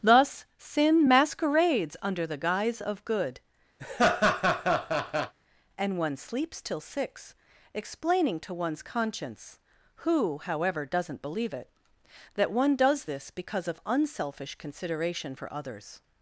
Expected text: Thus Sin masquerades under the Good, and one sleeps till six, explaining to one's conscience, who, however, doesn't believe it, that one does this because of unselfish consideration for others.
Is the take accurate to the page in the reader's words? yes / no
no